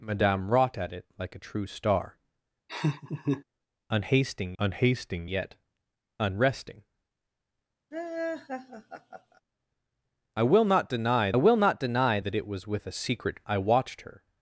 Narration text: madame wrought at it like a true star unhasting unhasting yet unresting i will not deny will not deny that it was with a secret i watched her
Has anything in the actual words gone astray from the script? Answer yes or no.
no